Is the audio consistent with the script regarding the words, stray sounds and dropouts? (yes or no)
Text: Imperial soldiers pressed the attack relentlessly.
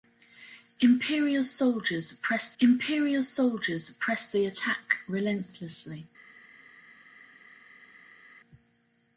no